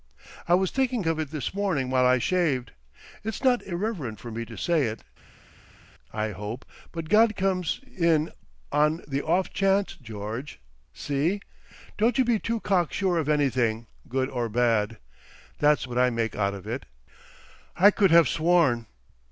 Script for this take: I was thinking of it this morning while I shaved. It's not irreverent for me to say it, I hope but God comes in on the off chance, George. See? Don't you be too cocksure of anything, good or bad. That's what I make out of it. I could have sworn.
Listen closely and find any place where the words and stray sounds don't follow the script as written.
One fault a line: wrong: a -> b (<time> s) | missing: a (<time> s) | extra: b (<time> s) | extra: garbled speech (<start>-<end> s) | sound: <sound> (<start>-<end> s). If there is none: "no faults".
no faults